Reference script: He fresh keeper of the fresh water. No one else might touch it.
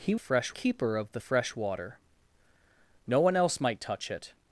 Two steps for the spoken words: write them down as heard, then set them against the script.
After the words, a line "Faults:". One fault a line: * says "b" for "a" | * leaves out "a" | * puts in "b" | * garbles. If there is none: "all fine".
He fresh keeper of the fresh water. No one else might touch it.
Faults:
all fine